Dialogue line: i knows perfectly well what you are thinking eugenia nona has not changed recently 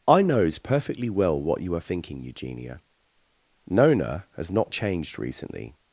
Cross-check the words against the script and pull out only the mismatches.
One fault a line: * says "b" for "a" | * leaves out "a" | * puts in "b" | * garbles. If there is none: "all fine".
all fine